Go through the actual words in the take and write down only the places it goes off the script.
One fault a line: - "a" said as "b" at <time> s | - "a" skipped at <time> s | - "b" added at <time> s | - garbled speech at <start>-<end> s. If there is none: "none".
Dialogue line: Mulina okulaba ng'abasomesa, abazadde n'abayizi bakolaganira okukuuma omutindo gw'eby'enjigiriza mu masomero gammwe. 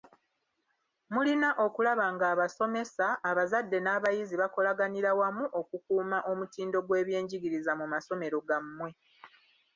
- "wamu" added at 5.2 s